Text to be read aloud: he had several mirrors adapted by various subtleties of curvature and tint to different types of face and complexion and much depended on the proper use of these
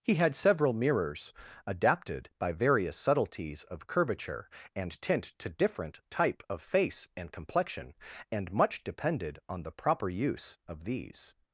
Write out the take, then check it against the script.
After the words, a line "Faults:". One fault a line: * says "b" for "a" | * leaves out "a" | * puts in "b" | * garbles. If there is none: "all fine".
he had several mirrors adapted by various subtleties of curvature and tint to different type of face and complexion and much depended on the proper use of these
Faults:
* says "type" for "types"